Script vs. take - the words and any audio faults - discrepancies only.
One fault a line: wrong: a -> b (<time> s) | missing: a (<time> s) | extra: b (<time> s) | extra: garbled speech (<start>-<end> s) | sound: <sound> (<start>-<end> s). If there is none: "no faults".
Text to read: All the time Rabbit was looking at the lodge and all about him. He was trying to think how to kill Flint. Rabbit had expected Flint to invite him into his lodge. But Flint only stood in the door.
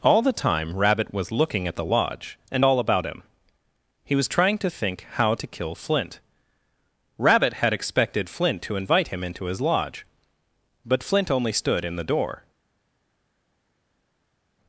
no faults